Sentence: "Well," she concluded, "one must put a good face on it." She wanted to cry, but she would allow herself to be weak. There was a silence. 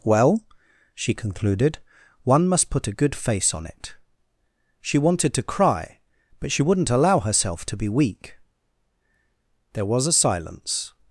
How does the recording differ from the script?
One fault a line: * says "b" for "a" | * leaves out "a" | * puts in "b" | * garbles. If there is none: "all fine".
* says "wouldn't" for "would"